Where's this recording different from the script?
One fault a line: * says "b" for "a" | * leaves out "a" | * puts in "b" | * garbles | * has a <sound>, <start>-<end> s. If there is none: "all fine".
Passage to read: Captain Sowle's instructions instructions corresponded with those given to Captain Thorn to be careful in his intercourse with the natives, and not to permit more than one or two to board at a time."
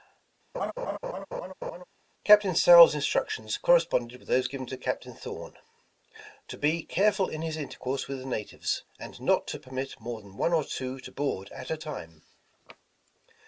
* has a laugh, 0.5-1.8 s
* leaves out "instructions"